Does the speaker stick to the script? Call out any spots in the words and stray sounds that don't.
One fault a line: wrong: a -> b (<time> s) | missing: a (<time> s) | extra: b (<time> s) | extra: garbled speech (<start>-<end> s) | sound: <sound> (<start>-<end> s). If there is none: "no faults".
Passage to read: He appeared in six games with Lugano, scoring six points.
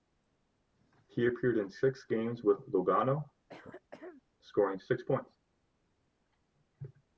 sound: throat clearing (3.5-4.2 s)